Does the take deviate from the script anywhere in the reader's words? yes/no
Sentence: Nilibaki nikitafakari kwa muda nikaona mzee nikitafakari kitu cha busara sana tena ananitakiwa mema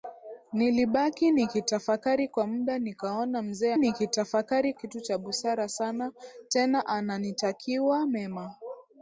no